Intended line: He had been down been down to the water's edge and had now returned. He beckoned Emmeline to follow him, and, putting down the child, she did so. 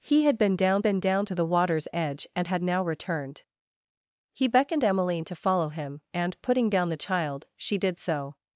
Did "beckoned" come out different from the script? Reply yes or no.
no